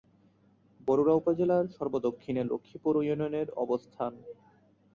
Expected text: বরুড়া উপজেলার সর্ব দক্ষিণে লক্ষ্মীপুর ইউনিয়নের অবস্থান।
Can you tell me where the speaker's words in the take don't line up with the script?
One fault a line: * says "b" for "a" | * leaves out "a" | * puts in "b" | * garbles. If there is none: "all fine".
all fine